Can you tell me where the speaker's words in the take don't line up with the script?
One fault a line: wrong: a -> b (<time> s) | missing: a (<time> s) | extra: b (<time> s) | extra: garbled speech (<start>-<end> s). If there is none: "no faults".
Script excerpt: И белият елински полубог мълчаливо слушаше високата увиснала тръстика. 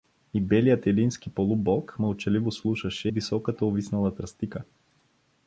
no faults